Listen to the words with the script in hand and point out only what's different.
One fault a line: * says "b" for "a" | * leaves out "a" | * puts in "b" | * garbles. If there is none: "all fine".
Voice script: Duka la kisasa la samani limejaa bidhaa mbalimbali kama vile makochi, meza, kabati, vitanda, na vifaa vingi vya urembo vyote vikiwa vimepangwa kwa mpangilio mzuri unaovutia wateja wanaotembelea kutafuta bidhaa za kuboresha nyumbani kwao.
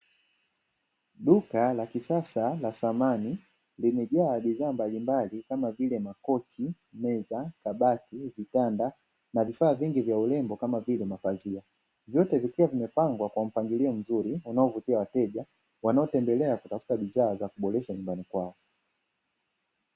* puts in "kama vile mapazia"